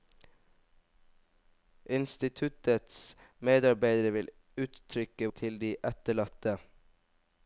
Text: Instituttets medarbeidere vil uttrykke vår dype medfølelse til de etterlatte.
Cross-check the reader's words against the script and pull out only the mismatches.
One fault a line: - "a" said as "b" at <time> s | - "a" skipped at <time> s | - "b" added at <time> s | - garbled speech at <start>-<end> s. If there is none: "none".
- "vår dype medfølelse" skipped at 5.3 s